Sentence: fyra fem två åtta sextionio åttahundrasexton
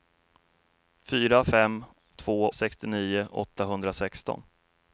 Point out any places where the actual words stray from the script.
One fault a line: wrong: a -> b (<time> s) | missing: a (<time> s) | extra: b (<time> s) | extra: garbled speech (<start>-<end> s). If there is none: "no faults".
missing: åtta (2.5 s)